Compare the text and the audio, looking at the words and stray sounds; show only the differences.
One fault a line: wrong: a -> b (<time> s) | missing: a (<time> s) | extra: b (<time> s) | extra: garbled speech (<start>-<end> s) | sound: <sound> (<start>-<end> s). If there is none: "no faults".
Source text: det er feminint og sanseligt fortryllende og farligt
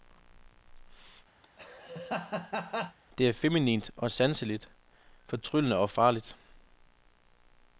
sound: laugh (1.4-3.0 s)